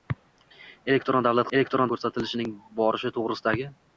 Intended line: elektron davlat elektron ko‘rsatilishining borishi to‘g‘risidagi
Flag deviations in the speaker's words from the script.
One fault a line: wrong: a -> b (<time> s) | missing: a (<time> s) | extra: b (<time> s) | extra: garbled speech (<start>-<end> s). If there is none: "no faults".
no faults